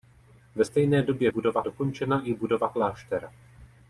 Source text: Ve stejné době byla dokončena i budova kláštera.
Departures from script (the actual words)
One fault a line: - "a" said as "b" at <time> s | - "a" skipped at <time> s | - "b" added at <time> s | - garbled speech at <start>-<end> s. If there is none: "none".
- "byla" said as "budova" at 1.3 s